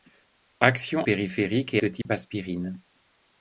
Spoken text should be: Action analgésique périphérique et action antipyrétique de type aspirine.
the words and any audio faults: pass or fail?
fail